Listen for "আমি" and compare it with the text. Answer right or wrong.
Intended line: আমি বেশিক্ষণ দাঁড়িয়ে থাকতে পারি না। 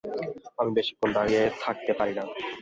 right